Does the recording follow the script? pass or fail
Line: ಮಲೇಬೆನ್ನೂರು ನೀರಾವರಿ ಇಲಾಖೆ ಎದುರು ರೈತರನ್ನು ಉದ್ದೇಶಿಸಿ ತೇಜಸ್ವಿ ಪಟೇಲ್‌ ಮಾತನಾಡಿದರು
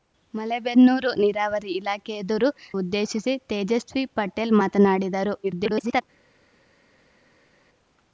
fail